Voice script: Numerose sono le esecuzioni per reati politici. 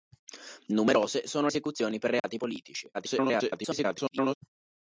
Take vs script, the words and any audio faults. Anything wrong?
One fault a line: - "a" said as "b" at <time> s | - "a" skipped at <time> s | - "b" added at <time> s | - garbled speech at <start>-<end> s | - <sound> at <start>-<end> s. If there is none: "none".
- "le" skipped at 1.5 s
- dropout at 2.2-2.2 s
- garbled speech at 2.9-4.4 s